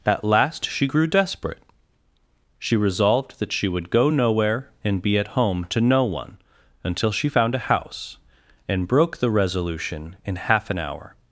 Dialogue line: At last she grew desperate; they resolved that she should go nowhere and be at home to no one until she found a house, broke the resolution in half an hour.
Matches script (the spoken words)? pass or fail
fail